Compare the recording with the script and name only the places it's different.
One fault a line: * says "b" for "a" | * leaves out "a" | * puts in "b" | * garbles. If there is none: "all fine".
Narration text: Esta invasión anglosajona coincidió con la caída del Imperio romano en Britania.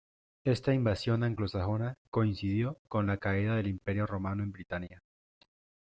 all fine